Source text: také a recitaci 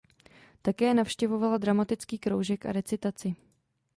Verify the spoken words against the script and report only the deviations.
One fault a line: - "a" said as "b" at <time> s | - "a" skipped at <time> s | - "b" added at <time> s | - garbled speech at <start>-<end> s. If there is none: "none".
- "navštěvovala dramatický kroužek" added at 0.9 s